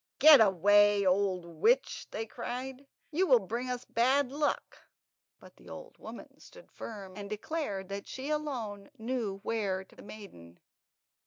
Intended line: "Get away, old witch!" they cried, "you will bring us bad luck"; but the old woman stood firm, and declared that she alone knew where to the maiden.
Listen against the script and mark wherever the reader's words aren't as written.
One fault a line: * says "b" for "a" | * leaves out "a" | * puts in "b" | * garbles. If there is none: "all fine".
all fine